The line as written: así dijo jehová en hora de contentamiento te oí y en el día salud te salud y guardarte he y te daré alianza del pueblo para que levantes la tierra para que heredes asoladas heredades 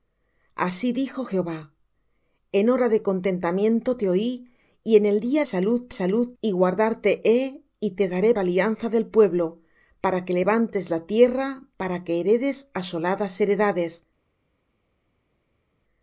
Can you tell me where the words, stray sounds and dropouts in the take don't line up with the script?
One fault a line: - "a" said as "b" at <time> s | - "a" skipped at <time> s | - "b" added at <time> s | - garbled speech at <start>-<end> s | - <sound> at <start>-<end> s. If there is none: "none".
none